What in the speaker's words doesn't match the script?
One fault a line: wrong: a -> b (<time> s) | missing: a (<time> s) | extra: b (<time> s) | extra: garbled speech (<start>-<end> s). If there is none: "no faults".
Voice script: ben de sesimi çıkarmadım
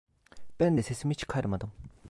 no faults